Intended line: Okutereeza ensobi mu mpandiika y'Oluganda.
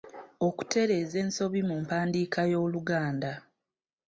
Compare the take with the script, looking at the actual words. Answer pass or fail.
pass